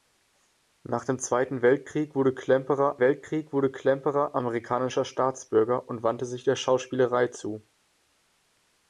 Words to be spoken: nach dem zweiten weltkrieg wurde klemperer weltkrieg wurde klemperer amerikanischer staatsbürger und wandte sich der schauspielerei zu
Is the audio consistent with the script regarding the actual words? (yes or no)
yes